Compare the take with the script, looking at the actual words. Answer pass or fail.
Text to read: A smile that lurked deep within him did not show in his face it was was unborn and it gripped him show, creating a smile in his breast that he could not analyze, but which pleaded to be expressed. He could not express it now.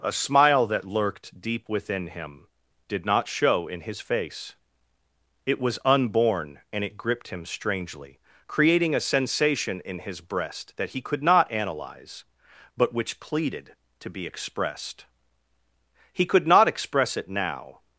fail